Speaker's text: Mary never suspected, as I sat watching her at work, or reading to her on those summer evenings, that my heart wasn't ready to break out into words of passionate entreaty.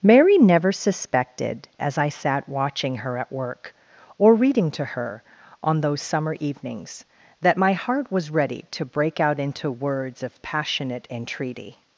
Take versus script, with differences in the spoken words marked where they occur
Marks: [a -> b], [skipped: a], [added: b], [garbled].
Mary never suspected, as I sat watching her at work, or reading to her on those summer evenings, that my heart [wasn't -> was] ready to break out into words of passionate entreaty.